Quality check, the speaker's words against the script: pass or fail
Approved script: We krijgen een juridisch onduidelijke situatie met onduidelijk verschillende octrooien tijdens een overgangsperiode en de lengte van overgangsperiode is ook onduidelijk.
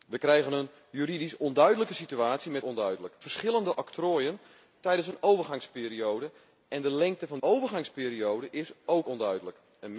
pass